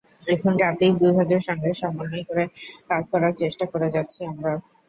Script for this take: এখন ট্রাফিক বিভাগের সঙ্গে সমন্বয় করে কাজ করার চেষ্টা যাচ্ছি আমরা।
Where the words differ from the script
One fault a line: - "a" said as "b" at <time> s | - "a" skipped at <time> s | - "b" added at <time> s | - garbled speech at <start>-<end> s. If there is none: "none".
- "করে" added at 3.7 s